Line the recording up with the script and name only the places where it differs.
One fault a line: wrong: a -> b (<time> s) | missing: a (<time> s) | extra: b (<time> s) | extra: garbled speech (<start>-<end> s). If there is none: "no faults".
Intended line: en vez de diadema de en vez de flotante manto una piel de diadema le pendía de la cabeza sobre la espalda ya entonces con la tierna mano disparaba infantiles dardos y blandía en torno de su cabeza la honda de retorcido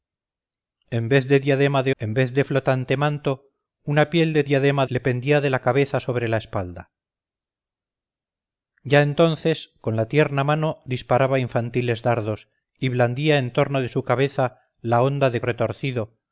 no faults